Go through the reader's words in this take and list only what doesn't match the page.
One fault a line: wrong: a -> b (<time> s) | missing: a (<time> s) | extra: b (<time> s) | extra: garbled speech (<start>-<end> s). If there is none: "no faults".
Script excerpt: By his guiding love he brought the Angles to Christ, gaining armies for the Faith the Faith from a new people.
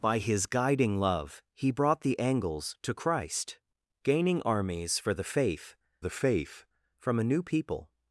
no faults